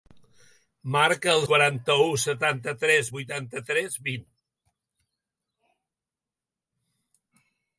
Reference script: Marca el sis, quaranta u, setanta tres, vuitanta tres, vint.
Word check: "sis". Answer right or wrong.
wrong